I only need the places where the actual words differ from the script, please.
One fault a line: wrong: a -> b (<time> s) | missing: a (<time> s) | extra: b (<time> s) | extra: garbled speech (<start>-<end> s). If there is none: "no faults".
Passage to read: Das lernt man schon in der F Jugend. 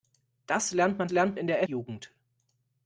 wrong: schon -> lernt (1.1 s)
missing: F (1.6 s)